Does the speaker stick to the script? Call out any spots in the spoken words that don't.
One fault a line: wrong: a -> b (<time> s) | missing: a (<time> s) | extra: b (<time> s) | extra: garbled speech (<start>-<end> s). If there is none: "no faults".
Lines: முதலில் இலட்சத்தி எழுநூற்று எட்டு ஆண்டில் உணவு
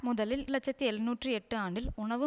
no faults